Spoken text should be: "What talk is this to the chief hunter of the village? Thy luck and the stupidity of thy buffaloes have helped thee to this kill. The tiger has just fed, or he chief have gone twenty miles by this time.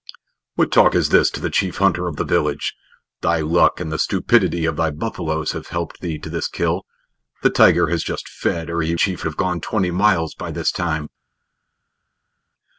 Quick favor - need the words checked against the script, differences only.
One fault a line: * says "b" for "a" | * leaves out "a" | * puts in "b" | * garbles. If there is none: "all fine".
all fine